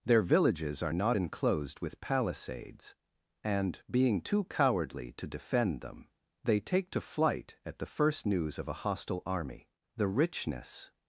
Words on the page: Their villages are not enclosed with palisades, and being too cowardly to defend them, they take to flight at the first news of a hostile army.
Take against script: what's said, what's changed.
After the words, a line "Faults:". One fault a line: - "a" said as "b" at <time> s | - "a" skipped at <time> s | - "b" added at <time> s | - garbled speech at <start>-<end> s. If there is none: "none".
Their villages are not enclosed with palisades, and being too cowardly to defend them, they take to flight at the first news of a hostile army. The richness
Faults:
- "The richness" added at 9.9 s